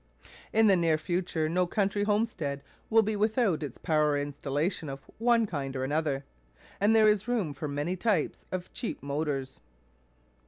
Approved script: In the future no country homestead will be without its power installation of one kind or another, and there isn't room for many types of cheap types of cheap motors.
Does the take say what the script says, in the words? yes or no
no